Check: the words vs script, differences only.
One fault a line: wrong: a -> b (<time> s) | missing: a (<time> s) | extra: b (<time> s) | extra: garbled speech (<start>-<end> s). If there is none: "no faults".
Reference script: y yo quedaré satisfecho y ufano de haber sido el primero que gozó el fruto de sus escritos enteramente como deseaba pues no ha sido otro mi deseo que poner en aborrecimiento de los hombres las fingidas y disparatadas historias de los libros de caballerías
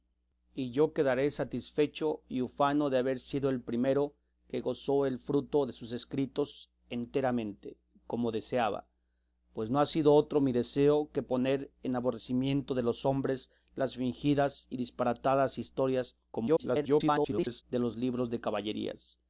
extra: garbled speech (16.3-17.6 s)